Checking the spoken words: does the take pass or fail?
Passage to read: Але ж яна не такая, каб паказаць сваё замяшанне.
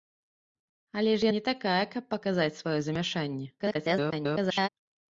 fail